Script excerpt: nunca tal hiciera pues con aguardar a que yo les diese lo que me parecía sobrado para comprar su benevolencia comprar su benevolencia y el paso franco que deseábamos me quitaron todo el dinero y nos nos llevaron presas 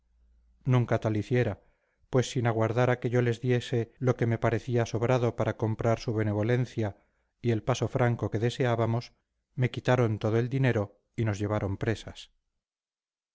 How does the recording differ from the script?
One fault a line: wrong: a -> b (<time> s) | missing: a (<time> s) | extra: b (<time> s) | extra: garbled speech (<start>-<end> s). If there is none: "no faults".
wrong: con -> sin (2.3 s)
missing: comprar su benevolencia (7.0 s)
missing: nos (11.4 s)